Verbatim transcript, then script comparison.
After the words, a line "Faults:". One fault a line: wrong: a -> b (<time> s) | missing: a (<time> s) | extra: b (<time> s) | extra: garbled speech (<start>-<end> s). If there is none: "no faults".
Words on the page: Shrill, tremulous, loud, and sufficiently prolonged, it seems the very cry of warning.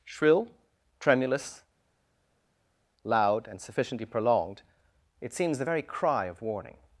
Shrill, tremulous, loud, and sufficiently prolonged, it seems the very cry of warning.
Faults:
no faults